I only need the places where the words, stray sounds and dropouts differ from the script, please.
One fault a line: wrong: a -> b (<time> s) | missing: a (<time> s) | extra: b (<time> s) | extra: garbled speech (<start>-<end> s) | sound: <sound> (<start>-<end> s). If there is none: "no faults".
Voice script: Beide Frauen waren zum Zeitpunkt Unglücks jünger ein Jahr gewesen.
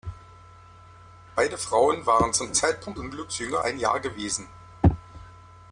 no faults